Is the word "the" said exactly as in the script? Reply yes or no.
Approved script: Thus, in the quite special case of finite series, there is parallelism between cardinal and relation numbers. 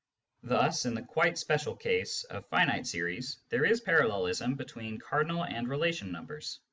yes